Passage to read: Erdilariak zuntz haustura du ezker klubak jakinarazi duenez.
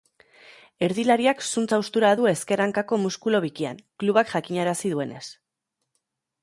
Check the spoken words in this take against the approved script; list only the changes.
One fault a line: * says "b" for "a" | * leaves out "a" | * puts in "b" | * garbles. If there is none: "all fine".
* puts in "hankako muskulu bikian"